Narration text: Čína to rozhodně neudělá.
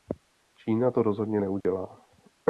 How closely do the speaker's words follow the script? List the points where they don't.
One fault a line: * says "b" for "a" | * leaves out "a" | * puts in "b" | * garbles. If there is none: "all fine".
all fine